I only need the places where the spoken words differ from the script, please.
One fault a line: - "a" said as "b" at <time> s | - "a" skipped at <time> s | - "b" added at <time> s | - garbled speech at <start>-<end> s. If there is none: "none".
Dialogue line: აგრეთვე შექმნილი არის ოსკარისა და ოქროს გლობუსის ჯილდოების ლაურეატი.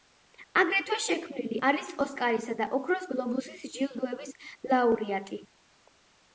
none